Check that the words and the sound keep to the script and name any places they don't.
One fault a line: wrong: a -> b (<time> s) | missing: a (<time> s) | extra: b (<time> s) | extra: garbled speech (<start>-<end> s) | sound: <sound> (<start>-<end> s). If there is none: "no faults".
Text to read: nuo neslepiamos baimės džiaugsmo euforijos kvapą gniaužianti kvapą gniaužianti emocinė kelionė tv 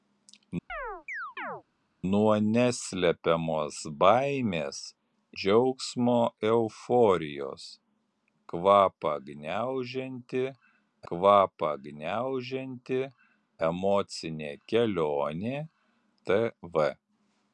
sound: chirp (0.7-1.6 s)